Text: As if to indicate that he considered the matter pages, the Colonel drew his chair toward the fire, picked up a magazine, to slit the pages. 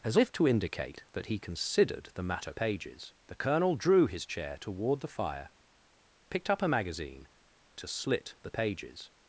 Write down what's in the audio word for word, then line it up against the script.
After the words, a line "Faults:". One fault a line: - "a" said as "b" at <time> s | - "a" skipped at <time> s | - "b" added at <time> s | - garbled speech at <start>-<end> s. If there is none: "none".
As if to indicate that he considered the matter pages, the Colonel drew his chair toward the fire, picked up a magazine, to slit the pages.
Faults:
none